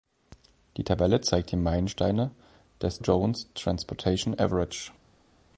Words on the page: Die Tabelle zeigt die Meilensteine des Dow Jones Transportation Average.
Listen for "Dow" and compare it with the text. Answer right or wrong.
wrong